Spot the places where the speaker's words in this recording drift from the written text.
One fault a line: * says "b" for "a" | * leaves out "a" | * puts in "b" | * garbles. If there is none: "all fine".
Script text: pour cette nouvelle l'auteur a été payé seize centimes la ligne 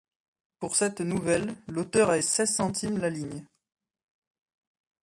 * leaves out "été payé"